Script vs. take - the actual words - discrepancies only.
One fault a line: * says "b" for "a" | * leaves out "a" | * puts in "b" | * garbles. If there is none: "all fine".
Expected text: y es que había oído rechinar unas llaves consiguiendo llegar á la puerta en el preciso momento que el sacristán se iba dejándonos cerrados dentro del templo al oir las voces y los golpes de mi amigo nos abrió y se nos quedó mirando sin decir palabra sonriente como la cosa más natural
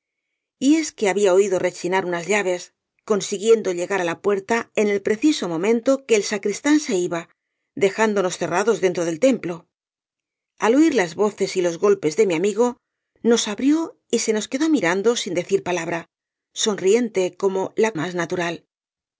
* leaves out "cosa"